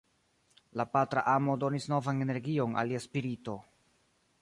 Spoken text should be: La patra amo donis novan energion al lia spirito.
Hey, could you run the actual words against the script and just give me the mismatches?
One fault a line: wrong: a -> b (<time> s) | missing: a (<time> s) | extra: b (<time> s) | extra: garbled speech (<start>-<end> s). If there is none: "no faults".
no faults